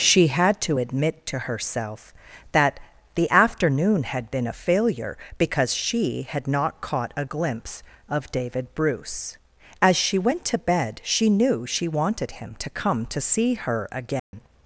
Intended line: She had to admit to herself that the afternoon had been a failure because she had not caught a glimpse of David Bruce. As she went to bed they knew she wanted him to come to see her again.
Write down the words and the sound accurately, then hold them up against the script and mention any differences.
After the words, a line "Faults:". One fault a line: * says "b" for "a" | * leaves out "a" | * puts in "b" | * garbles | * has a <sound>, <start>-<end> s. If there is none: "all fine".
She had to admit to herself that the afternoon had been a failure because she had not caught a glimpse of David Bruce. As she went to bed she knew she wanted him to come to see her again.
Faults:
* says "she" for "they"
* has a dropout, 14.2-14.3 s